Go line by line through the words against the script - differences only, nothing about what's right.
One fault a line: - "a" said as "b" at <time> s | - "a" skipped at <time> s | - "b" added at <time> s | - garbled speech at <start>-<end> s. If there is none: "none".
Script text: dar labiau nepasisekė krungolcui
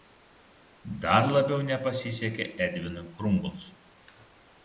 - "edvinui" added at 2.7 s